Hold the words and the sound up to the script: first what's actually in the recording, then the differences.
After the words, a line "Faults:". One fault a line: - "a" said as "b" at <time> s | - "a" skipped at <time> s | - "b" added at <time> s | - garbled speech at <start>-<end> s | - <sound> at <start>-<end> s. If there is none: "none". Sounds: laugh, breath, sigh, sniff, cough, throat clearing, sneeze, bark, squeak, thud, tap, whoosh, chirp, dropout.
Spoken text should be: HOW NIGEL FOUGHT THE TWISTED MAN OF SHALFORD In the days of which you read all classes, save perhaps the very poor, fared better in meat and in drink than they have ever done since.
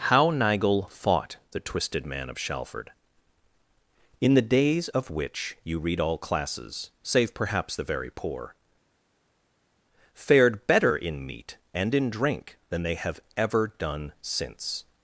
HOW NIGEL FOUGHT THE TWISTED MAN OF SHALFORD In the days of which you read all classes, save perhaps the very poor, fared better in meat and in drink than they have ever done since.
Faults:
none